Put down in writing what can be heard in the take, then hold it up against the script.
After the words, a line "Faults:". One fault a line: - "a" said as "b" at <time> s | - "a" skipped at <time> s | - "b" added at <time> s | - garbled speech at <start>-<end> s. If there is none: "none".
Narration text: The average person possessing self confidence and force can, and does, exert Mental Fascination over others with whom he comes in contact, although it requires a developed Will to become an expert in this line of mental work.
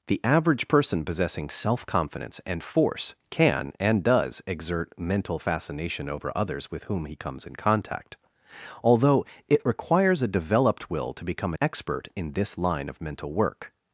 The average person possessing self confidence and force can, and does, exert Mental Fascination over others with whom he comes in contact, although it requires a developed Will to become expert in this line of mental work.
Faults:
- "an" skipped at 11.5 s